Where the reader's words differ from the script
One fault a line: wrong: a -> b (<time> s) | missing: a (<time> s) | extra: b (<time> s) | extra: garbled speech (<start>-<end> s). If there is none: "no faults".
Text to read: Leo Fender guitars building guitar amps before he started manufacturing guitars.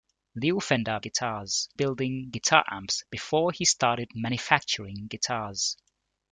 no faults